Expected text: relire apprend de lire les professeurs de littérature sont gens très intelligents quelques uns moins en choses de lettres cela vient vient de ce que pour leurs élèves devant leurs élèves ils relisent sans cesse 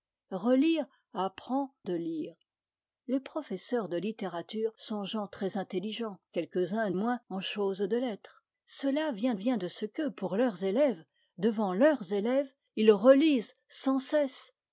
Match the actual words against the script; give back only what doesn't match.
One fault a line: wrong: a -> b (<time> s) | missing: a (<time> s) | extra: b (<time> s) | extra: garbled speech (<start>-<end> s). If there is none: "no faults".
no faults